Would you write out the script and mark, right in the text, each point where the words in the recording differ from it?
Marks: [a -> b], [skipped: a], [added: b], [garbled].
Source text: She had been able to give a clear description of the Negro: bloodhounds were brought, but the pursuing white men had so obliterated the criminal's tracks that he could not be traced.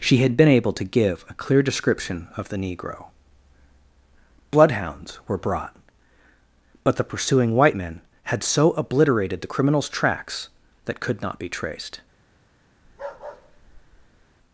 She had been able to give a clear description of the Negro: bloodhounds were brought, but the pursuing white men had so obliterated the criminal's tracks that [skipped: he] could not be traced.